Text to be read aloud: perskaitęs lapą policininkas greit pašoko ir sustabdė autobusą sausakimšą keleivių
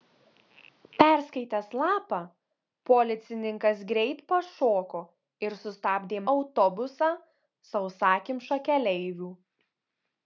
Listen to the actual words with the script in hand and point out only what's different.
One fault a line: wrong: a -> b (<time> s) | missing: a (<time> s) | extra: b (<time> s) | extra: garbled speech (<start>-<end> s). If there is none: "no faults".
no faults